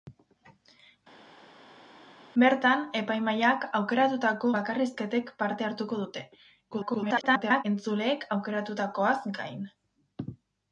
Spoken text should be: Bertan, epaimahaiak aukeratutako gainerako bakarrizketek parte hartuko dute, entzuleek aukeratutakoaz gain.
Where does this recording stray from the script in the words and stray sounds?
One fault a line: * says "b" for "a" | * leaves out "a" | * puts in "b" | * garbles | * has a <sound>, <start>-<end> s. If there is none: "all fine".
* leaves out "gainerako"
* garbles